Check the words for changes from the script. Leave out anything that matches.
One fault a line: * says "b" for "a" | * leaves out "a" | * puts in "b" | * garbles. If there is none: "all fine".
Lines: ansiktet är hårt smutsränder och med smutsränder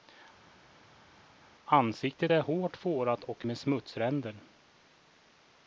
* says "fårat" for "smutsränder"